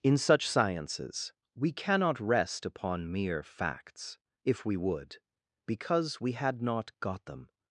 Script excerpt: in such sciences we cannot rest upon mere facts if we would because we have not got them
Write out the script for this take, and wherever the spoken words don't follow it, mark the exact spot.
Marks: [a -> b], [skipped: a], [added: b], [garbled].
in such sciences we cannot rest upon mere facts if we would because we [have -> had] not got them